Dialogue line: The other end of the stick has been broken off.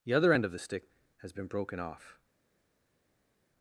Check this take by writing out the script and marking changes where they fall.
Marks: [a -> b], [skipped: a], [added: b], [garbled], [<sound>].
The other end of the stick has been broken off.